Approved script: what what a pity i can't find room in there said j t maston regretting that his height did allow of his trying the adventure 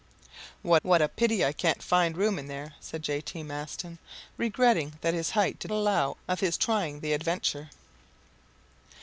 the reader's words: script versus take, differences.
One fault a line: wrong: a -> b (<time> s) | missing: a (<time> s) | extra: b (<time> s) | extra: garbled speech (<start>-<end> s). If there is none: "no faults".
no faults